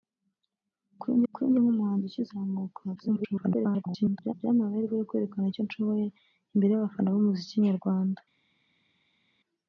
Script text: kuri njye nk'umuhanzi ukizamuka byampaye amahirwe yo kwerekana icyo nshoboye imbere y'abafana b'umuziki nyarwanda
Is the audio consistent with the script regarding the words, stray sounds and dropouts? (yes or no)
no